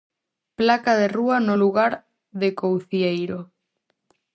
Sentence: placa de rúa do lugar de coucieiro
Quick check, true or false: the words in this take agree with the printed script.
false